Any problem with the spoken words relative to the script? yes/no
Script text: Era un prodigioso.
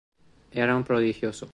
no